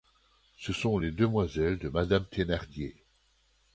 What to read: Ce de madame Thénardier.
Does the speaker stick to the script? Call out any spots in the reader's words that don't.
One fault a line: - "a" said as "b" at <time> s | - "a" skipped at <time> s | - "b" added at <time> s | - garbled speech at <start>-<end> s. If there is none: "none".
- "sont les demoiselles" added at 0.7 s